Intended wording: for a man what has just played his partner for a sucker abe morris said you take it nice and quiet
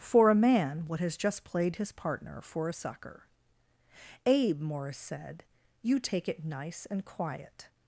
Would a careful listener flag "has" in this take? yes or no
no